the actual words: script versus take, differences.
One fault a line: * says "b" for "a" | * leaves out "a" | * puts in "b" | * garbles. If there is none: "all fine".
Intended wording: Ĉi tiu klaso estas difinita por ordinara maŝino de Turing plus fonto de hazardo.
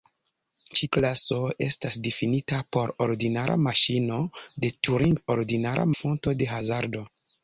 * leaves out "tiu"
* says "ordinara" for "plus"